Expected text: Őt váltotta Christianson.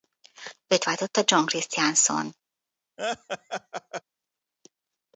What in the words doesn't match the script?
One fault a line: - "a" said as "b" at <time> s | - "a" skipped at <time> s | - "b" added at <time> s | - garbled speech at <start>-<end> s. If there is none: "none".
- "John" added at 1.2 s